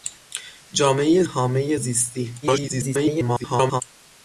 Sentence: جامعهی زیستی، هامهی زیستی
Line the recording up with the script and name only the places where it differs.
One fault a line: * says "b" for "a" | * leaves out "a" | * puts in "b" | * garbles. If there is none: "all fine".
* leaves out "زیستی"
* garbles